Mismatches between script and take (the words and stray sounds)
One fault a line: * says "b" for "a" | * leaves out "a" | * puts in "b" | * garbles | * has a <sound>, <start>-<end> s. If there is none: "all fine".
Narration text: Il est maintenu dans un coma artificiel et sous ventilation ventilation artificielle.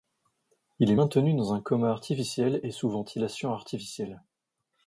* leaves out "ventilation"